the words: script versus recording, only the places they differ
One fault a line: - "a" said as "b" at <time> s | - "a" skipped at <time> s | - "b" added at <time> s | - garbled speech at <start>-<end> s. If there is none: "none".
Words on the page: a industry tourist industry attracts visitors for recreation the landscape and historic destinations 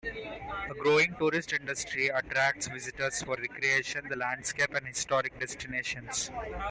- "industry" said as "growing" at 0.8 s